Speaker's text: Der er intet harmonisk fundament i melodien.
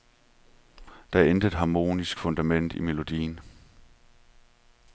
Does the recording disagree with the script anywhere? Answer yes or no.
no